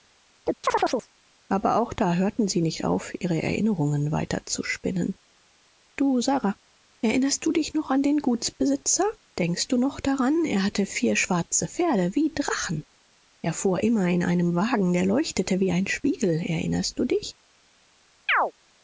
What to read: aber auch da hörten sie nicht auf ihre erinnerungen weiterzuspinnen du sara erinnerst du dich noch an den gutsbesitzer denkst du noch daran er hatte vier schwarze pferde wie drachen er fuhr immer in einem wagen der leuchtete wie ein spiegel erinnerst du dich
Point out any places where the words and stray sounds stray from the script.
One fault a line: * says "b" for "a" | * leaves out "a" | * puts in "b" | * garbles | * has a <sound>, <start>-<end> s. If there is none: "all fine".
* has a chirp, 0.5-1.1 s
* has a chirp, 18.3-18.5 s